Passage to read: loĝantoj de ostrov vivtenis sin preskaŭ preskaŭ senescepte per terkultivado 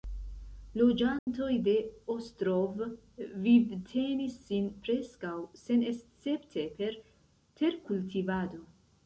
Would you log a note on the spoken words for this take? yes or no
yes